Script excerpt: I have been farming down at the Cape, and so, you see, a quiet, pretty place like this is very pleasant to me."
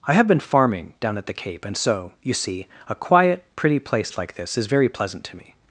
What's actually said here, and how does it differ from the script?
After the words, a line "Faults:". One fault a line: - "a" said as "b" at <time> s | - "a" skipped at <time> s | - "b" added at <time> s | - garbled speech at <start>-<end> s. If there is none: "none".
I have been farming down at the Cape, and so, you see, a quiet, pretty place like this is very pleasant to me."
Faults:
none